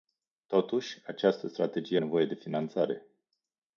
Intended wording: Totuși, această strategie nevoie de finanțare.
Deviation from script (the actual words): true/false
false